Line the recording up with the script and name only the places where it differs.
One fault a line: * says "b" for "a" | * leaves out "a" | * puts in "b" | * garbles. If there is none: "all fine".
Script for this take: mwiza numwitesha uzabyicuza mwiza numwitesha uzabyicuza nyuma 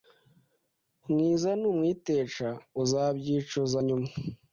* leaves out "mwiza numwitesha uzabyicuza"